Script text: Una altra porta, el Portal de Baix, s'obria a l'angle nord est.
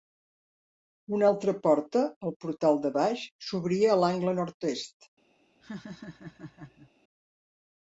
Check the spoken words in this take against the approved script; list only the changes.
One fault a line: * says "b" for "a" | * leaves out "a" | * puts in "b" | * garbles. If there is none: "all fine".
all fine